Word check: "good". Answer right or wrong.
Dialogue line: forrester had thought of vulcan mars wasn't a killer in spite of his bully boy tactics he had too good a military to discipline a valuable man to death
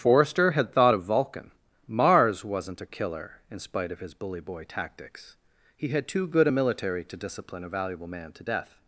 right